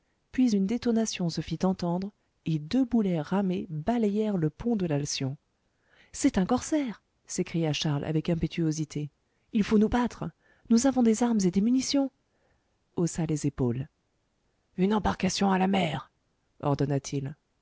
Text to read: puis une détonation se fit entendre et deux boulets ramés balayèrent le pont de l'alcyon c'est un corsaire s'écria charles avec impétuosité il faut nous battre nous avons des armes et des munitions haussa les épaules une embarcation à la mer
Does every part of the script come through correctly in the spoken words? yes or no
yes